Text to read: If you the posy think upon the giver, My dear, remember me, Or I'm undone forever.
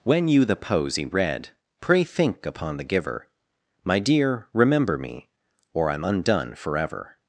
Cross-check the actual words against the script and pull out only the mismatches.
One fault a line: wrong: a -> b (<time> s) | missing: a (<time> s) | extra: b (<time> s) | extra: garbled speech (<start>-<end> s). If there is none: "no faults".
wrong: If -> When (0.0 s)
extra: read Pray (1.1 s)